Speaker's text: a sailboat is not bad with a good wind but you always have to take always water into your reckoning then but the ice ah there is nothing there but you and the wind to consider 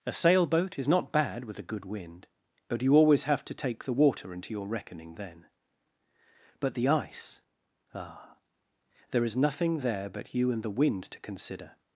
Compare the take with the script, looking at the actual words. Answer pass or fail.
fail